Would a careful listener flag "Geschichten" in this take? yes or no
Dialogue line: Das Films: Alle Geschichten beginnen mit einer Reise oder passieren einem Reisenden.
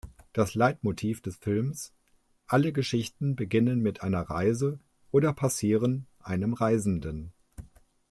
no